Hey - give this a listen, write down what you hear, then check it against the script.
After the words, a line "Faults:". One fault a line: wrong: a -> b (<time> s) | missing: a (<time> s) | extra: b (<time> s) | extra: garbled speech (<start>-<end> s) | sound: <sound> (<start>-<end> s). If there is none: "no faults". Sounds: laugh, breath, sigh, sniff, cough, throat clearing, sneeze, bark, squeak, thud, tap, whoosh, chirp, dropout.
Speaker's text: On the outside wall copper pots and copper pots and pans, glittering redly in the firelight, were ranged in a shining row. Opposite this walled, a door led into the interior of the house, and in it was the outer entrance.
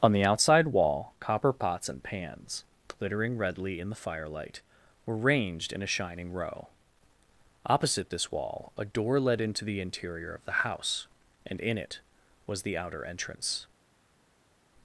On the outside wall copper pots and pans, glittering redly in the firelight, were ranged in a shining row. Opposite this wall, a door led into the interior of the house, and in it was the outer entrance.
Faults:
missing: copper pots and (2.0 s)
wrong: walled -> wall (8.3 s)